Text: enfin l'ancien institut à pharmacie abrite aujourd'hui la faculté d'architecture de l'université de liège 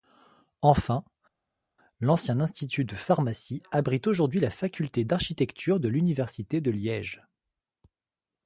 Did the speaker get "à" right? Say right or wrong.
wrong